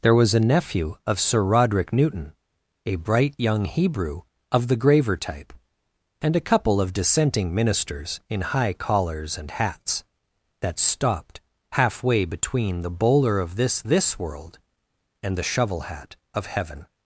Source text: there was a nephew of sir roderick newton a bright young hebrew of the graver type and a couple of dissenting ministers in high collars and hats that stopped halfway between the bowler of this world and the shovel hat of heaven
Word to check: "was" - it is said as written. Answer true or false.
true